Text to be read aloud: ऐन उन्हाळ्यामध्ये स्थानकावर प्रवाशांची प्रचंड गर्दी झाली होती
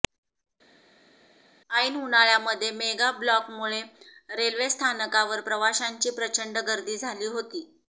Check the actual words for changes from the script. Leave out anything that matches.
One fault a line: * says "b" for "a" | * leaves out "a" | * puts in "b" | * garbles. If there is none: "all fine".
* puts in "मेगा ब्लॉकमुळे रेल्वे"